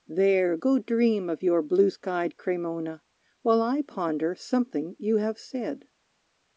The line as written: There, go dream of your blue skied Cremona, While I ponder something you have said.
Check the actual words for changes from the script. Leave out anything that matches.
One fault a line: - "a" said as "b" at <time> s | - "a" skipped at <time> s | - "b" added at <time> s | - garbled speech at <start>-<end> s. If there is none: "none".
none